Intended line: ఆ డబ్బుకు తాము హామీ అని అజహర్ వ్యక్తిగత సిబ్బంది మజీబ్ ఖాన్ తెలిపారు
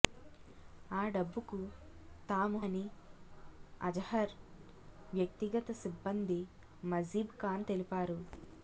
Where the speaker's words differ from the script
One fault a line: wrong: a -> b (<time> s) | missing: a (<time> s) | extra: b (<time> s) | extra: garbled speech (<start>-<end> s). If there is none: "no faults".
missing: హామీ (2.6 s)